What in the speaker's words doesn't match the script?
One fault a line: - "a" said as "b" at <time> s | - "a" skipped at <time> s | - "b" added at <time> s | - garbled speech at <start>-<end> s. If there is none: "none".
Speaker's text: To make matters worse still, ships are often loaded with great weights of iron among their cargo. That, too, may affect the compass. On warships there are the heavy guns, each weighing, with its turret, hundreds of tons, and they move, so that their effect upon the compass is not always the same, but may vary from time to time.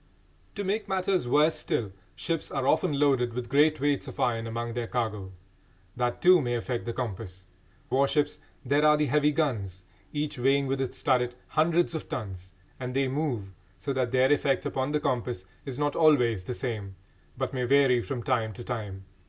- "On" skipped at 7.5 s